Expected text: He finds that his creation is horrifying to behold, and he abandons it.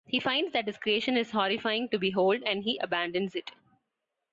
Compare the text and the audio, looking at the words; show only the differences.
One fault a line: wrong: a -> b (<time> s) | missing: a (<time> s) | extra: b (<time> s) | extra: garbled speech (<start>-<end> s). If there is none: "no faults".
no faults